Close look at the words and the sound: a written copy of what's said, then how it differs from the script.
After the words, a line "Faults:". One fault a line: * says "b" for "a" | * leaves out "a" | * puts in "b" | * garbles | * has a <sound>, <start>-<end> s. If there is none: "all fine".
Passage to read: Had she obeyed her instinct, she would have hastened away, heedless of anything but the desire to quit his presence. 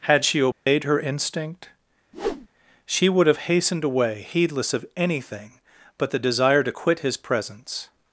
Had she obeyed her instinct, she would have hastened away, heedless of anything but the desire to quit his presence.
Faults:
* has a dropout, 0.5-0.7 s
* has a whoosh, 2.1-2.5 s